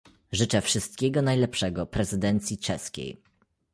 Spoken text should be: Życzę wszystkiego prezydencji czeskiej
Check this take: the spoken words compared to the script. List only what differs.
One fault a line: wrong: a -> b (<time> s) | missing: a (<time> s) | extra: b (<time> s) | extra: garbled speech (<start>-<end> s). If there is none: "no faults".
extra: najlepszego (1.2 s)